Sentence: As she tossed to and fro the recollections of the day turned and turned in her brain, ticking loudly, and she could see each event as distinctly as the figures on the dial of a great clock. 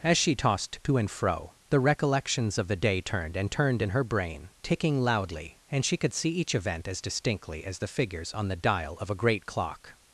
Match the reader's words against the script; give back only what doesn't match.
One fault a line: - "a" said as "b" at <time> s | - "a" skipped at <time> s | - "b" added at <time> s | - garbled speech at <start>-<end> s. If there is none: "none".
none